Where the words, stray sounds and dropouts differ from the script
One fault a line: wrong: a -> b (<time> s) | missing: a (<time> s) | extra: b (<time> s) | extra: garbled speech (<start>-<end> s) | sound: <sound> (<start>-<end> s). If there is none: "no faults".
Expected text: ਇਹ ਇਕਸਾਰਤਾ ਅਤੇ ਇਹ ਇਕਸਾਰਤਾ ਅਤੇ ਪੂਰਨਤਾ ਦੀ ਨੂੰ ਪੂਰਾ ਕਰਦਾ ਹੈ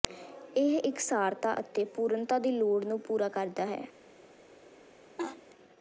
missing: ਇਹ ਇਕਸਾਰਤਾ ਅਤੇ (1.8 s)
extra: ਲੋੜ (2.5 s)
sound: laugh (5.2-5.4 s)